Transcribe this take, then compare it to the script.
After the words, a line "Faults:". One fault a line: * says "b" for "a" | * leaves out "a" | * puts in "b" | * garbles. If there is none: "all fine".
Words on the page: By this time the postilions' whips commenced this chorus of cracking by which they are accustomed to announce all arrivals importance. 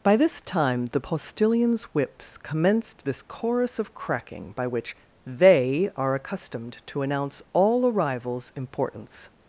By this time the postilions' whips commenced this chorus of cracking by which they are accustomed to announce all arrivals importance.
Faults:
all fine